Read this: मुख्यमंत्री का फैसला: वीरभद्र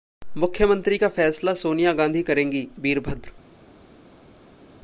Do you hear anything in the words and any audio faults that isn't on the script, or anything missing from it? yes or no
yes